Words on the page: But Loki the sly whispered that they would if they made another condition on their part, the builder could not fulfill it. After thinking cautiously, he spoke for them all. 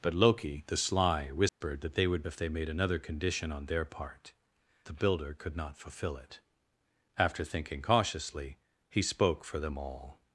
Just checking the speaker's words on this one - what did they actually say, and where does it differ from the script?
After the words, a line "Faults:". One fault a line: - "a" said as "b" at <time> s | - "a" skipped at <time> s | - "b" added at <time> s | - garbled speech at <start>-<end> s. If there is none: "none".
But Loki the sly whispered that they would if they made another condition on their part, the builder could not fulfill it. After thinking cautiously, he spoke for them all.
Faults:
none